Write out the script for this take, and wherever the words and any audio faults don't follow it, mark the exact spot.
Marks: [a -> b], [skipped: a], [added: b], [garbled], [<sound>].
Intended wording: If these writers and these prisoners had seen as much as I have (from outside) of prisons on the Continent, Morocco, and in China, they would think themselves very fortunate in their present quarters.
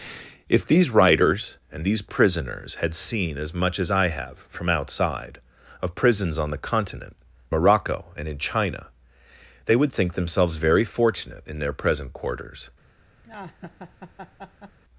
If these writers and these prisoners had seen as much as I have (from outside) of prisons on the Continent, Morocco, and in China, they would think themselves very fortunate in their present quarters. [laugh]